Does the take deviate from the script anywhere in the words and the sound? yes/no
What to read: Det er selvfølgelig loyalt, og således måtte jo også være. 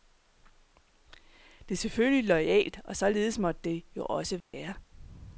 yes